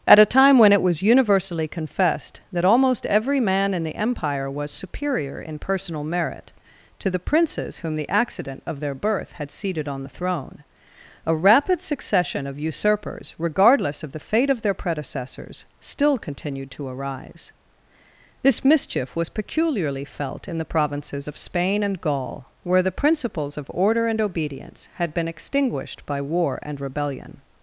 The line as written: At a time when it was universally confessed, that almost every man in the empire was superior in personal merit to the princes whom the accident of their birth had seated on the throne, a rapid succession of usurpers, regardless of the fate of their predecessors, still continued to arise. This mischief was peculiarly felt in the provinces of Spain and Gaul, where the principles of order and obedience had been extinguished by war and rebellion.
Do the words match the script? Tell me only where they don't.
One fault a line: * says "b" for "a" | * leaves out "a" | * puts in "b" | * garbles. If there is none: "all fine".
all fine